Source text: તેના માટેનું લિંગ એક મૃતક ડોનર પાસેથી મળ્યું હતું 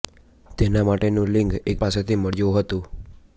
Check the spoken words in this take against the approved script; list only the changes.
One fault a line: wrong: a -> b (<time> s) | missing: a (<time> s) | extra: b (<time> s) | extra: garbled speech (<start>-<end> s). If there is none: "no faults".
missing: મૃતક ડોનર (1.8 s)